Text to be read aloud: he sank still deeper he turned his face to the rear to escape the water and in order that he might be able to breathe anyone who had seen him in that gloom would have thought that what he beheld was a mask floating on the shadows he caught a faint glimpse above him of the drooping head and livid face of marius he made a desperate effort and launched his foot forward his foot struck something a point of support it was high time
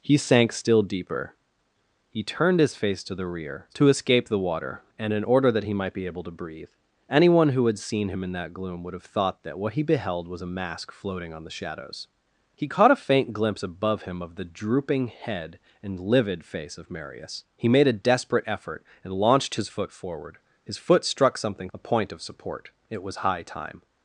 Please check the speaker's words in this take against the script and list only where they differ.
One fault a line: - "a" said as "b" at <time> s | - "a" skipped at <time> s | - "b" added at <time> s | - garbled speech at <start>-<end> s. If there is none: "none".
none